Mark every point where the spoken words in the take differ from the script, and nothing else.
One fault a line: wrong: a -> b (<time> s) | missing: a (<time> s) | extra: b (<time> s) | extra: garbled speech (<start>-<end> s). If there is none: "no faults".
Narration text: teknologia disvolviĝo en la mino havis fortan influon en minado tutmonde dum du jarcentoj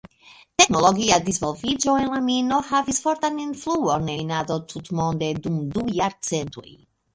missing: en (4.1 s)